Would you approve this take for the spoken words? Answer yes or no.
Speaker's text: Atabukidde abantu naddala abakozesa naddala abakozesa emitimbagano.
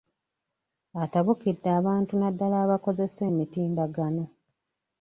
no